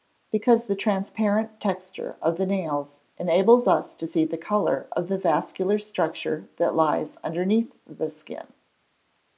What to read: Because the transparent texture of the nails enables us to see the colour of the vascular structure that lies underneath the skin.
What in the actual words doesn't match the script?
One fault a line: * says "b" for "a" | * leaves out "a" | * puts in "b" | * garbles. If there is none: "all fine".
all fine